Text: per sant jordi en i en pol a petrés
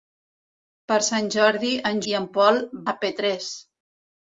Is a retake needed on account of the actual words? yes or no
no